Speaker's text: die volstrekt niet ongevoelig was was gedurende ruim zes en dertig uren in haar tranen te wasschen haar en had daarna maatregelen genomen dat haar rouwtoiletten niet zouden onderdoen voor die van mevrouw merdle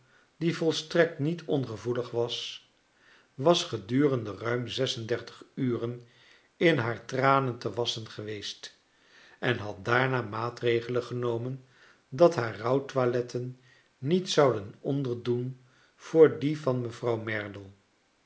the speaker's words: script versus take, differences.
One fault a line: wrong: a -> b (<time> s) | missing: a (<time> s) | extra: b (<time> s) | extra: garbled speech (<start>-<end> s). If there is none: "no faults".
wrong: haar -> geweest (8.1 s)